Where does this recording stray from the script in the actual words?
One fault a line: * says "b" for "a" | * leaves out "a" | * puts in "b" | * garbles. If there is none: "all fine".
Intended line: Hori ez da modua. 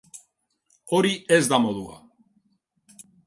all fine